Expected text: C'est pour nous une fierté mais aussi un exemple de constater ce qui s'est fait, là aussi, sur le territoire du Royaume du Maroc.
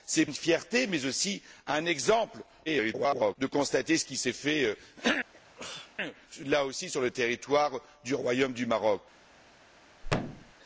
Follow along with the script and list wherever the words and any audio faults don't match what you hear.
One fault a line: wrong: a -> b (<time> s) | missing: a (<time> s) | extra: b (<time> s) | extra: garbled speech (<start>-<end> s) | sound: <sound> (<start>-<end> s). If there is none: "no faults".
missing: pour nous (0.2 s)
extra: garbled speech (2.7-3.4 s)
sound: sneeze (5.3-6.0 s)
sound: thud (10.0-10.5 s)